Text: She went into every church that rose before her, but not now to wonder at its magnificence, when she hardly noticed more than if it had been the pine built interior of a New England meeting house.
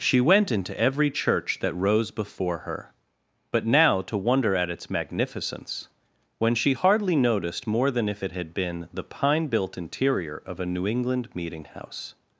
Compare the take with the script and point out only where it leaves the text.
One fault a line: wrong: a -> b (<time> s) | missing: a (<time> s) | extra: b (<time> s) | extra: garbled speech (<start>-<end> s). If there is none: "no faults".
missing: not (3.7 s)